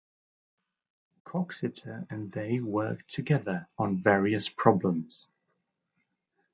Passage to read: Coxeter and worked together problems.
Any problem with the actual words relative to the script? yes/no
yes